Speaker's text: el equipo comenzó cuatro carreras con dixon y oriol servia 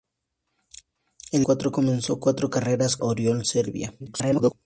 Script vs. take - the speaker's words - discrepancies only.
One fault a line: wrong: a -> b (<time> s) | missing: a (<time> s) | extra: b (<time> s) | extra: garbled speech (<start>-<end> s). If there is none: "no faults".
wrong: equipo -> cuatro (1.4 s)
missing: con dixon y (3.0 s)
extra: garbled speech (4.0-4.5 s)